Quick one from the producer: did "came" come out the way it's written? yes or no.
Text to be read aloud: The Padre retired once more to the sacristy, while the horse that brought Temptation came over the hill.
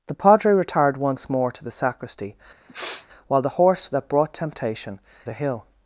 no